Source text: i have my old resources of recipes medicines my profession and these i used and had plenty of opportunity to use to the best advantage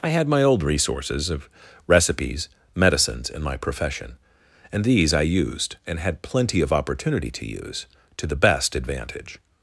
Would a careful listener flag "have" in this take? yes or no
yes